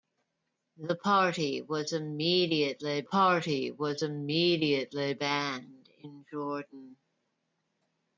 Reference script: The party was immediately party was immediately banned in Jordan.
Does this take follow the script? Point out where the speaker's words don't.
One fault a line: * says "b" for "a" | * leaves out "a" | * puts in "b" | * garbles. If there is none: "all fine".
all fine